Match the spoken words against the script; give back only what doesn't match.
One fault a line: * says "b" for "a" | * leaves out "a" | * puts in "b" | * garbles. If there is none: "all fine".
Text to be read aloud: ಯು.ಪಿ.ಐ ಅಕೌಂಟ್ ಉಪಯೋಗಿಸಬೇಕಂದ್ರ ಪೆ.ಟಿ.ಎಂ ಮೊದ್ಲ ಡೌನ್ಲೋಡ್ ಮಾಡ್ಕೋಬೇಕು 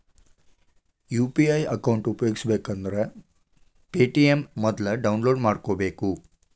all fine